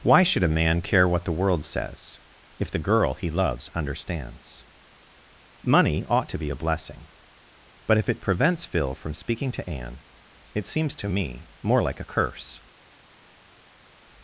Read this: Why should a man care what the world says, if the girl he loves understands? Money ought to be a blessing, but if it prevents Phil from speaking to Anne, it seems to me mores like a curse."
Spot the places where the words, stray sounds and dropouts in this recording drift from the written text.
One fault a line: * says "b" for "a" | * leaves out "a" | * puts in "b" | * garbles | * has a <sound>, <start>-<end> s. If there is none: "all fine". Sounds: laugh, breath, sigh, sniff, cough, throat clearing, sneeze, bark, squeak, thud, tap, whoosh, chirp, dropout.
* says "more" for "mores"